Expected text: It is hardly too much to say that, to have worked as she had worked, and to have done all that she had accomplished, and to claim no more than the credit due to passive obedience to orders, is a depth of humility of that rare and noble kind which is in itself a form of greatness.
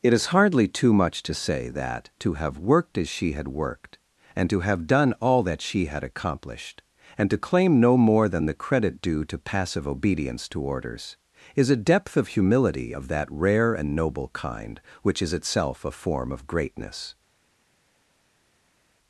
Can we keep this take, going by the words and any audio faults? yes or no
no